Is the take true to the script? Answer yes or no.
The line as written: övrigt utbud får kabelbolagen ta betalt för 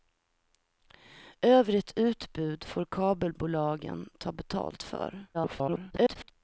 no